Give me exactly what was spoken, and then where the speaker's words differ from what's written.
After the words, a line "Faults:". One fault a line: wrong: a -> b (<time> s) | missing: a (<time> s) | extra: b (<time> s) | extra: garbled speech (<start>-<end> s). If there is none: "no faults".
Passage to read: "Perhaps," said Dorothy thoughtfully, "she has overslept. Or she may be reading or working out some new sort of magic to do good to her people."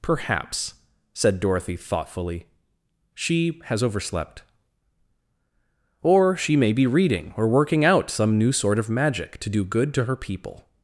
"Perhaps," said Dorothy thoughtfully, "she has overslept. Or she may be reading or working out some new sort of magic to do good to her people."
Faults:
no faults